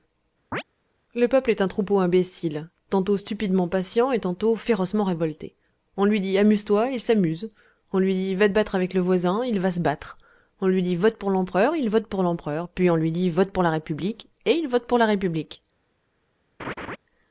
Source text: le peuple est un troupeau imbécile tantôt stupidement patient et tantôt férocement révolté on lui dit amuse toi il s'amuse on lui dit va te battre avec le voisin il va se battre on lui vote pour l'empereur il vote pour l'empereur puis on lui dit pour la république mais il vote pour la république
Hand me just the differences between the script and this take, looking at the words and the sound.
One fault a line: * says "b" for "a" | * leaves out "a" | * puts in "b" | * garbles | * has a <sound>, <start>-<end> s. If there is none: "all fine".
* has a chirp, 0.5-0.6 s
* puts in "dit"
* puts in "vote"
* says "et" for "mais"
* has a laugh, 16.6-17.0 s